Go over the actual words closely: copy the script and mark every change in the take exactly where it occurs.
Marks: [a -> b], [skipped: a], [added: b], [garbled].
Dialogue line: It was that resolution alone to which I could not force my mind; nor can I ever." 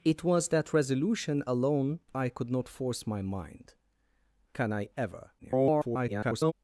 It was that resolution alone [skipped: to which] I could not force my mind; [skipped: nor] can I ever." [garbled]